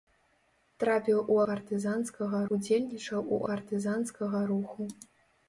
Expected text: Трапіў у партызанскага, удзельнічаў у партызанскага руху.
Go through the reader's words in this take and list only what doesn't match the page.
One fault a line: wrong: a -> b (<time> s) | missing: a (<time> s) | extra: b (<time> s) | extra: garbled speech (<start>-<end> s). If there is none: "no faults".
no faults